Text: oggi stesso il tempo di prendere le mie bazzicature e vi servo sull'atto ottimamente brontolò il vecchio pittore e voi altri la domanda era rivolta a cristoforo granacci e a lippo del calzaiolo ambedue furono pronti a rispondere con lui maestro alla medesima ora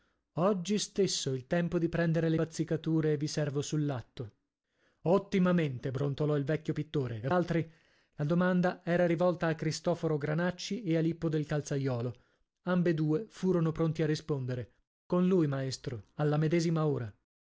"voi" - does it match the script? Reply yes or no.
no